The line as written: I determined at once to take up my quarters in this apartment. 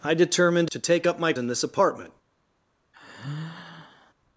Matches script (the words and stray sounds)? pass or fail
fail